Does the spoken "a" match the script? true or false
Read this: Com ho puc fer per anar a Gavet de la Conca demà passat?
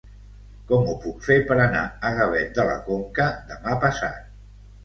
true